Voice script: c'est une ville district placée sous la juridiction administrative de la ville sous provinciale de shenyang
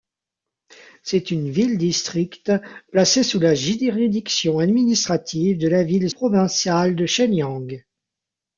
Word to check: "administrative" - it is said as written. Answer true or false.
true